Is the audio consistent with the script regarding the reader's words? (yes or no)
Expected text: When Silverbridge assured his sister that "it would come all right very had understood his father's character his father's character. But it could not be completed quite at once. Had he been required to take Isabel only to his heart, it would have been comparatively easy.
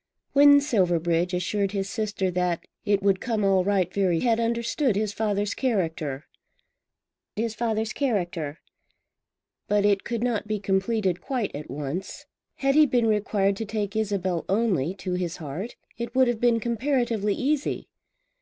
yes